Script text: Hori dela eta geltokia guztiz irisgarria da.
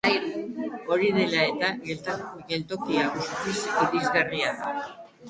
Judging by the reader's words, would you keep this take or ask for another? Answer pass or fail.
pass